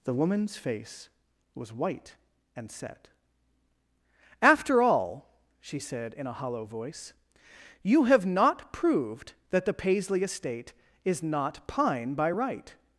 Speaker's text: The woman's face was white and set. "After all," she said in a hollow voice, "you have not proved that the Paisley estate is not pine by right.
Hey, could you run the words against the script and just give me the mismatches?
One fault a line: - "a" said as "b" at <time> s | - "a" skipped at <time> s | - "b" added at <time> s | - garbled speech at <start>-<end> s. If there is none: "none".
none